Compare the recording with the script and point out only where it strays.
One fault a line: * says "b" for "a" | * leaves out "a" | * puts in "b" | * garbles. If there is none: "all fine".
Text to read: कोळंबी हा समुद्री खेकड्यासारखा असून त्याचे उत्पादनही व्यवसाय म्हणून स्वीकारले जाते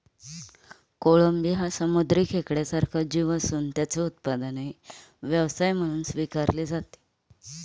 * puts in "जीव"